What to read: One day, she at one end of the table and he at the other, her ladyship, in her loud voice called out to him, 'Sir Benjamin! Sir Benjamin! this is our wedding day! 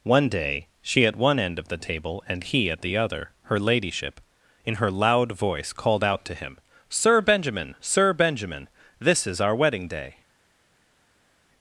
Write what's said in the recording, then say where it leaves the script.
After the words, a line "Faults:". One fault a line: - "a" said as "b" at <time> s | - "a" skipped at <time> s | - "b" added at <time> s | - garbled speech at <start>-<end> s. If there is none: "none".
One day, she at one end of the table and he at the other, her ladyship, in her loud voice called out to him, 'Sir Benjamin! Sir Benjamin! this is our wedding day!
Faults:
none